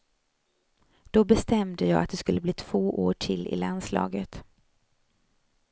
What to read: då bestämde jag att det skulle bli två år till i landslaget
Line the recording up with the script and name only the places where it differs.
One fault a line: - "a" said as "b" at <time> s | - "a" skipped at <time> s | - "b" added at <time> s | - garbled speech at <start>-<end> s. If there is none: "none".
none